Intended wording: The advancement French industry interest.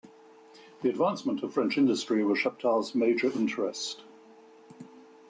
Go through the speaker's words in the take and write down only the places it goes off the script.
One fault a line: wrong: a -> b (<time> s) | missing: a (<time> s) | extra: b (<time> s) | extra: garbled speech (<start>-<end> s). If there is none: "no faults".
extra: of (1.4 s)
extra: was Chaptal's major (2.2 s)